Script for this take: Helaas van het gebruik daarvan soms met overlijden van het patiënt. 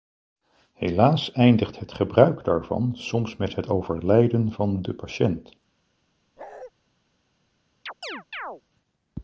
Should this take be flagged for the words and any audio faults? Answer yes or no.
yes